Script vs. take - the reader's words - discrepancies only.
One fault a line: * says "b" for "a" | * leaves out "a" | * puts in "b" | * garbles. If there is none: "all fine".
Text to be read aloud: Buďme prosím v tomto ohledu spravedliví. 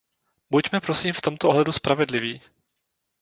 all fine